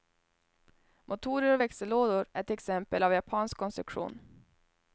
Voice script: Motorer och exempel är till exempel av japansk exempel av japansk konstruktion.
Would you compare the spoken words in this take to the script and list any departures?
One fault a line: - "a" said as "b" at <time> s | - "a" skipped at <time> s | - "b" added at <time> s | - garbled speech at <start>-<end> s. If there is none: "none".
- "exempel" said as "växellådor" at 1.6 s
- "exempel av japansk" skipped at 3.6 s